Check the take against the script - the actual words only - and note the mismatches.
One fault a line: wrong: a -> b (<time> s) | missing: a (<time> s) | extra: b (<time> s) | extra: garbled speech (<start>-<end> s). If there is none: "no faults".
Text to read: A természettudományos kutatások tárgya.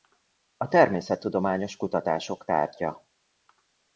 no faults